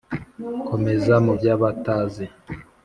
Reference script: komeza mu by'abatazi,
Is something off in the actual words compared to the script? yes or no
no